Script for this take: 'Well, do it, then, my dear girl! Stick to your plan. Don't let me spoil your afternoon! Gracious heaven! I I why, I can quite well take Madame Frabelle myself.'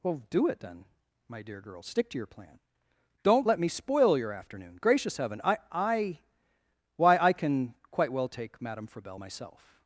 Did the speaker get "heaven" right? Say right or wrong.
right